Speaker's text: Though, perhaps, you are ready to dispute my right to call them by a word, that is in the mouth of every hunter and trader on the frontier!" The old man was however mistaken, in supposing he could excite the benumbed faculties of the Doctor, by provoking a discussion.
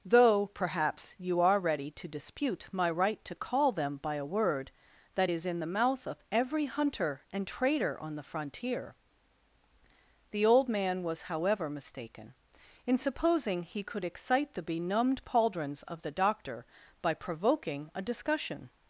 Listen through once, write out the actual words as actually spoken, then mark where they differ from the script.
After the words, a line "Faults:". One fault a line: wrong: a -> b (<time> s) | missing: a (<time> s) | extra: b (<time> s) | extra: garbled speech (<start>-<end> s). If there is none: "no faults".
Though, perhaps, you are ready to dispute my right to call them by a word, that is in the mouth of every hunter and trader on the frontier!" The old man was however mistaken, in supposing he could excite the benumbed pauldrons of the Doctor, by provoking a discussion.
Faults:
wrong: faculties -> pauldrons (15.2 s)